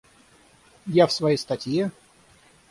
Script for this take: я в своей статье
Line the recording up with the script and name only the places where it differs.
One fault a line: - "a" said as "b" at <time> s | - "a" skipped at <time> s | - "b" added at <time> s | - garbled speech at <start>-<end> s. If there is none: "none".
none